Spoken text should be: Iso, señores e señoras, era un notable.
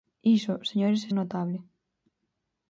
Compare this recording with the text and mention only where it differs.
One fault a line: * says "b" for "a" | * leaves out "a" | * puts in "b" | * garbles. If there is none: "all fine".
* leaves out "señoras era"